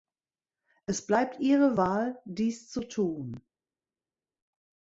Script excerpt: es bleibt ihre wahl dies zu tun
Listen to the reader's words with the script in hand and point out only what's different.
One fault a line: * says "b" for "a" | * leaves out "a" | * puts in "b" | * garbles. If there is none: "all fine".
all fine